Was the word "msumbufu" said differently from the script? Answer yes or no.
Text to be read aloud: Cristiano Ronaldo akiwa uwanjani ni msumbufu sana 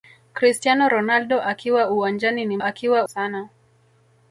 yes